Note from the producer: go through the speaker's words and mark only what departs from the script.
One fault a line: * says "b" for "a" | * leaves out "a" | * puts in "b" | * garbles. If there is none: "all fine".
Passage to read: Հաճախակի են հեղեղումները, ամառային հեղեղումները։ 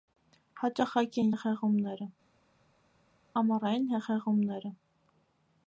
all fine